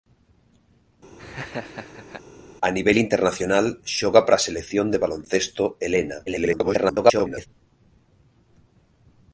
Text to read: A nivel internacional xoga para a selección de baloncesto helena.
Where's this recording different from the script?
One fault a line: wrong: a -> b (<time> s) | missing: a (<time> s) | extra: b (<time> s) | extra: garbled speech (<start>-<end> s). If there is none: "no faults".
extra: garbled speech (6.3-7.5 s)